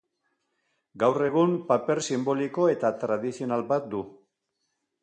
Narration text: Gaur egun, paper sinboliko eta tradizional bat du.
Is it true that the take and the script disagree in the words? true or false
false